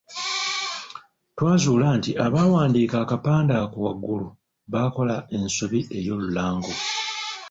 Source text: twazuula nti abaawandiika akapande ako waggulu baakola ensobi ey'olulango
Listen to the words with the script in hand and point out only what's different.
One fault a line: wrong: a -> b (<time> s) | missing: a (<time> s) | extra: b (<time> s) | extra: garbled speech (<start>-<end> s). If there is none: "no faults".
no faults